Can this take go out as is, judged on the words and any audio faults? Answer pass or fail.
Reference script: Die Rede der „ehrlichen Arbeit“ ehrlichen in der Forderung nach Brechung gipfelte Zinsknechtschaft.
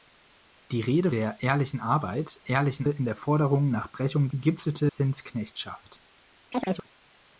fail